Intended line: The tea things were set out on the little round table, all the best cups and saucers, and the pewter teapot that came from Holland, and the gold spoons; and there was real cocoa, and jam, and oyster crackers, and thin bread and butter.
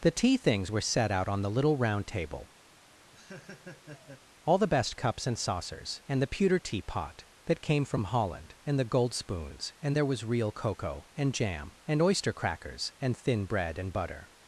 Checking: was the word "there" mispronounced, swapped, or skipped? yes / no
no